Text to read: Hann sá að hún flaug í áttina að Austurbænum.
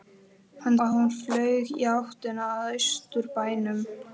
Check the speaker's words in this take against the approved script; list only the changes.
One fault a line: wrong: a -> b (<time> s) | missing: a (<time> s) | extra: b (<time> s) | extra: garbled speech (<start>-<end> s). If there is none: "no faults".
missing: sá (0.8 s)